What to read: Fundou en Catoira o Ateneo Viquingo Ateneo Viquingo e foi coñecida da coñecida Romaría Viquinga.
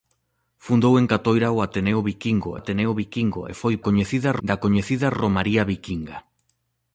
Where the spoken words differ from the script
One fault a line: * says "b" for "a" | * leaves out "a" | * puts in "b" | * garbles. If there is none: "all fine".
all fine